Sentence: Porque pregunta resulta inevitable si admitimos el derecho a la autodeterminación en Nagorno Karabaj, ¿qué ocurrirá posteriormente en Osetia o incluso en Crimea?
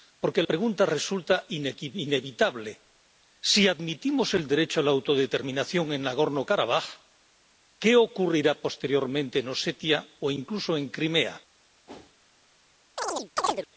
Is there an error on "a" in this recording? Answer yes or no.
no